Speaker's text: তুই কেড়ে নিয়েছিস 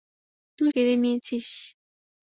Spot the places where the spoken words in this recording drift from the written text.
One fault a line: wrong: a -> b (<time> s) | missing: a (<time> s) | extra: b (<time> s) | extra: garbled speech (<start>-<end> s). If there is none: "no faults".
no faults